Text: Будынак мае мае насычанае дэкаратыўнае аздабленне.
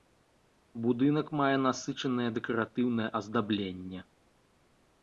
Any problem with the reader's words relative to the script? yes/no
yes